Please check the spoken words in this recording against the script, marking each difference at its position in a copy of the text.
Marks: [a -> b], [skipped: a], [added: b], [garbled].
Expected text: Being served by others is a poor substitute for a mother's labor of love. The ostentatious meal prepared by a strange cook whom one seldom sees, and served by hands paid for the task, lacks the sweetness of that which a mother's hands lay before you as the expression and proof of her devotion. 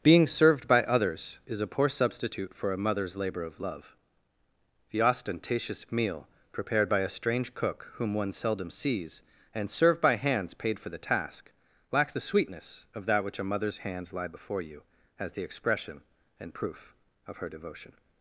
Being served by others is a poor substitute for a mother's labor of love. The ostentatious meal prepared by a strange cook whom one seldom sees, and served by hands paid for the task, lacks the sweetness of that which a mother's hands [lay -> lie] before you as the expression and proof of her devotion.